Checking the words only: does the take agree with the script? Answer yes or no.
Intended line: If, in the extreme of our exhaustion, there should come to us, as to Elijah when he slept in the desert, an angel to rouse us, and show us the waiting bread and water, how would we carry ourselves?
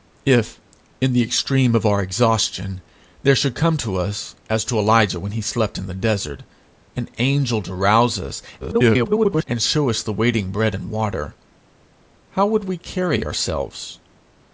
no